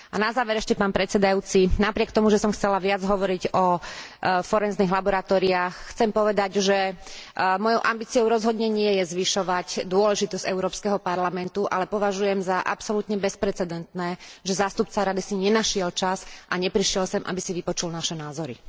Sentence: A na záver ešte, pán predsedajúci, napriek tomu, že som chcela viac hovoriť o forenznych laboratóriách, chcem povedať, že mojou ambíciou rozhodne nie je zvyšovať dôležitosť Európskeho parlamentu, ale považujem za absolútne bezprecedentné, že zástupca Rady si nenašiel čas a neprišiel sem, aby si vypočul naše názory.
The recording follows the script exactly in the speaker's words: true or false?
true